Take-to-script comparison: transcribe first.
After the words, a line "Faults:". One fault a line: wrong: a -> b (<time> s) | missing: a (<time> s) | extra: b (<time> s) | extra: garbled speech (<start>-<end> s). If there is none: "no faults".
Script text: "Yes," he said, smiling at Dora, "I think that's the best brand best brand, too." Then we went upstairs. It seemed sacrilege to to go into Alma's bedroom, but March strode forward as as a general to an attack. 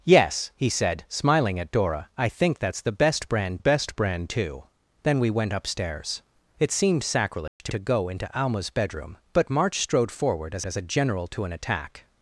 "Yes," he said, smiling at Dora, "I think that's the best brand best brand, too." Then we went upstairs. It seemed sacrilege to to go into Alma's bedroom, but March strode forward as as a general to an attack.
Faults:
no faults